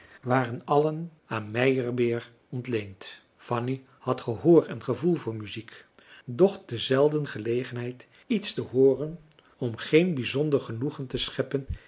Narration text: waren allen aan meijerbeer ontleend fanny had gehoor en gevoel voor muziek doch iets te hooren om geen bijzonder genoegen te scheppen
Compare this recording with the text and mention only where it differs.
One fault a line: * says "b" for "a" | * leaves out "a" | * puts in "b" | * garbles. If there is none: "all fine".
* puts in "te zelden gelegenheid"